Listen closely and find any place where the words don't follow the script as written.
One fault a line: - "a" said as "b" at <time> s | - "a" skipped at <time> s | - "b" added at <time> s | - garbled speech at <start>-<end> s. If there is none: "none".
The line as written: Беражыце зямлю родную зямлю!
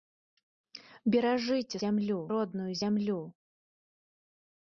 none